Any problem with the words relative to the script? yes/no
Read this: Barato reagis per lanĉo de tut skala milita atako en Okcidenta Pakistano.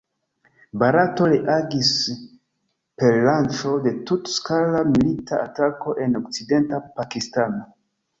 no